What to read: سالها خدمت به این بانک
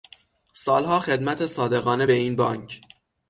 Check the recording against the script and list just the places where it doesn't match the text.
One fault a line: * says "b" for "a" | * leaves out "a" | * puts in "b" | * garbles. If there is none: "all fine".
* puts in "صادقانه"